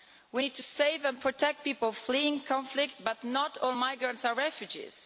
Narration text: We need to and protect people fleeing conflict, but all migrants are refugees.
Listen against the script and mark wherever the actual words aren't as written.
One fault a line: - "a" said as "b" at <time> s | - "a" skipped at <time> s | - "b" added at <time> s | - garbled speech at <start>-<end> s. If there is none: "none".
- "save" added at 0.6 s
- "not" added at 3.2 s